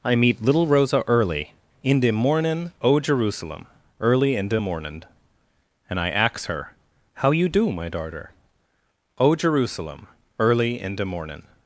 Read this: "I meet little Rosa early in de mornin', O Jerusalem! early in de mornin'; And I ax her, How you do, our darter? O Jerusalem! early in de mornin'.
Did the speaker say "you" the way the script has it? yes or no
yes